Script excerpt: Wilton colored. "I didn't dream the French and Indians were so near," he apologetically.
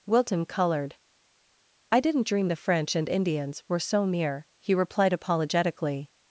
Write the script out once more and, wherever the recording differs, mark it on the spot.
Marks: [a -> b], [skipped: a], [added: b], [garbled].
Wilton colored. "I didn't dream the French and Indians were so near," he [added: replied] apologetically.